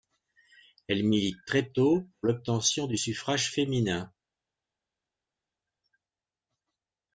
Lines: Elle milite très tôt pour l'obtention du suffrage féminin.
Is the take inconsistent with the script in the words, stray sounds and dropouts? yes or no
no